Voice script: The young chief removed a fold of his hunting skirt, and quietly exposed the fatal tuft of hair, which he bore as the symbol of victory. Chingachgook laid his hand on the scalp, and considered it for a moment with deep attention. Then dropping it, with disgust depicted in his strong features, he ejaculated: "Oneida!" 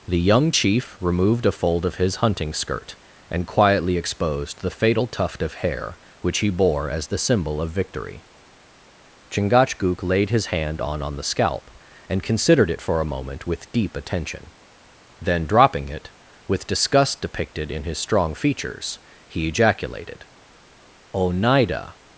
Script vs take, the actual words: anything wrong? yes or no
yes